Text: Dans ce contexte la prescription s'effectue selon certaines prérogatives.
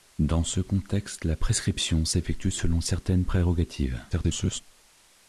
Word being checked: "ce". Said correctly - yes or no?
yes